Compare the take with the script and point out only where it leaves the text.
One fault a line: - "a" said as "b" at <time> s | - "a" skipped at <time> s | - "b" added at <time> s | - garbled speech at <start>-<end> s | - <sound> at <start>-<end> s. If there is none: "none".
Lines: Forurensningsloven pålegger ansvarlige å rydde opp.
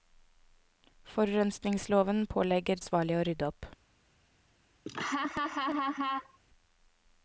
- laugh at 4.9-6.4 s